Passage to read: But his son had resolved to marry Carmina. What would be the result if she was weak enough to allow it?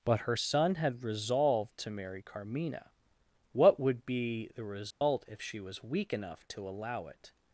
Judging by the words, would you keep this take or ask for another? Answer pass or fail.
fail